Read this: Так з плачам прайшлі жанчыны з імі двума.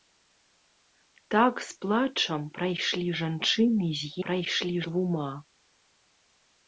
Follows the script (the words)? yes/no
no